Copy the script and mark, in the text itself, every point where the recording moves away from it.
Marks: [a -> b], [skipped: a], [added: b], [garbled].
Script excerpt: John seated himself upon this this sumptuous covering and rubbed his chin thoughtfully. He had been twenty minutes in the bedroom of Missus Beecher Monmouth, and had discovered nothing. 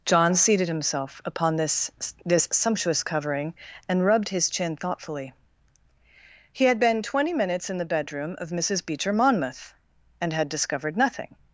John seated himself upon this this sumptuous covering and rubbed his chin thoughtfully. He had been twenty minutes in the bedroom of Missus Beecher Monmouth, and had discovered nothing.